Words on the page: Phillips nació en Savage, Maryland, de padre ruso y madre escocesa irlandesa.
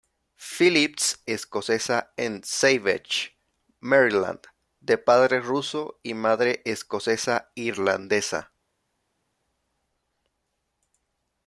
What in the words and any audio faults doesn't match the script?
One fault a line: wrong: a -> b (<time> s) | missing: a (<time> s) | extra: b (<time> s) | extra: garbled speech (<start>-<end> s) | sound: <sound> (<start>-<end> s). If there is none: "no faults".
wrong: nació -> escocesa (1.3 s)